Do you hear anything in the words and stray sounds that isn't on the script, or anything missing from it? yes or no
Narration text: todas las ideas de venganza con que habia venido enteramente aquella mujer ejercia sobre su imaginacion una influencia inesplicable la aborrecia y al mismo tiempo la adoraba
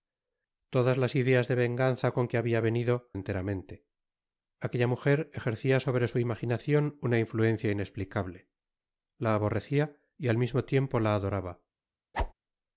yes